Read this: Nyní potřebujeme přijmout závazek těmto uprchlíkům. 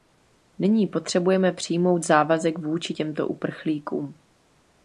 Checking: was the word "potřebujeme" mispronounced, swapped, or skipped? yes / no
no